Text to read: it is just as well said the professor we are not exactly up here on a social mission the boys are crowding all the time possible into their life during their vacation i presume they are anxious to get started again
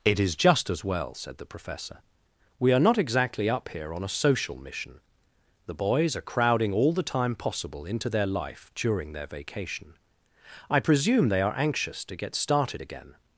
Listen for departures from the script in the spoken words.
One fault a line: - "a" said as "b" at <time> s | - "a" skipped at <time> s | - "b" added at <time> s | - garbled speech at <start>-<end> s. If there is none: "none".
none